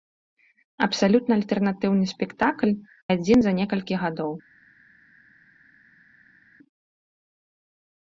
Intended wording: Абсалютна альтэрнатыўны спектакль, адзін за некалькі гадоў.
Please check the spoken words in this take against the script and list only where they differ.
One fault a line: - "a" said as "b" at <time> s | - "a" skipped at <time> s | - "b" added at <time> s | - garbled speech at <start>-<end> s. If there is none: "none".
none